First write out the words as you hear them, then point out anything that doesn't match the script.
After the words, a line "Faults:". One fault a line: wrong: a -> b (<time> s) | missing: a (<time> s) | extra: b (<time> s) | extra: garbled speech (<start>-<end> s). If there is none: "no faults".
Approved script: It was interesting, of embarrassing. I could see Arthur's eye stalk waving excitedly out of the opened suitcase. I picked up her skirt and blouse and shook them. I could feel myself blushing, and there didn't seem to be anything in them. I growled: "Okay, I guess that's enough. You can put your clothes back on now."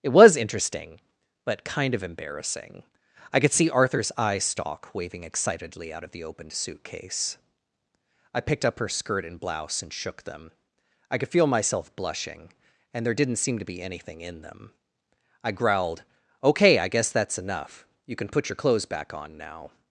It was interesting, but kind of embarrassing. I could see Arthur's eye stalk waving excitedly out of the opened suitcase. I picked up her skirt and blouse and shook them. I could feel myself blushing, and there didn't seem to be anything in them. I growled: "Okay, I guess that's enough. You can put your clothes back on now."
Faults:
extra: but kind (1.4 s)